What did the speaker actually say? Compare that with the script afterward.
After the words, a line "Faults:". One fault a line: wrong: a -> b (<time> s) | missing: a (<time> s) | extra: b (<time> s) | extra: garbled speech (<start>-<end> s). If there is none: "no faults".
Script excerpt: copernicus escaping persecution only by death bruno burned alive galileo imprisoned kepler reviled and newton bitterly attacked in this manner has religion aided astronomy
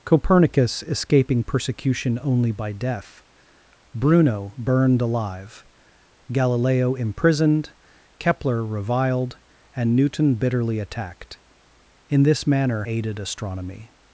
copernicus escaping persecution only by death bruno burned alive galileo imprisoned kepler reviled and newton bitterly attacked in this manner aided astronomy
Faults:
missing: has religion (12.8 s)